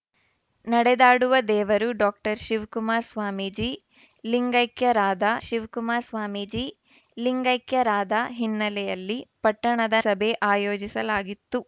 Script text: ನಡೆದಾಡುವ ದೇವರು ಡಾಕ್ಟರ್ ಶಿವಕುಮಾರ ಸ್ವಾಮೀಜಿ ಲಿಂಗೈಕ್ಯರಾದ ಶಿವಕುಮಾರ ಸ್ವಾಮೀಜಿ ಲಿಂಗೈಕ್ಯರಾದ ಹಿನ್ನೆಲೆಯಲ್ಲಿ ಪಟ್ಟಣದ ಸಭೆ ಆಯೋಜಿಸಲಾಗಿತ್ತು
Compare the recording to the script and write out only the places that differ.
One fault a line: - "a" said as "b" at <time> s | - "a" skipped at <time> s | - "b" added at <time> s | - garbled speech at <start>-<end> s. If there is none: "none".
none